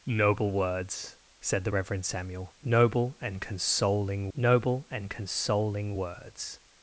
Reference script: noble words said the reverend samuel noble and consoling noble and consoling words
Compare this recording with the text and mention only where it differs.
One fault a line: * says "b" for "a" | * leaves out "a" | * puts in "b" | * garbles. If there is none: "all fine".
all fine